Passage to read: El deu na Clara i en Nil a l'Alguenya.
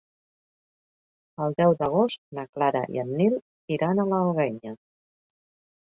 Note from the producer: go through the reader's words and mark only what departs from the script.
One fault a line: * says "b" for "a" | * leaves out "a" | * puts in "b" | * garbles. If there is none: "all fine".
* puts in "d'agost"
* puts in "iran"